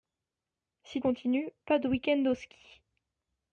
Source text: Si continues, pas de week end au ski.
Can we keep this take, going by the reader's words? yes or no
yes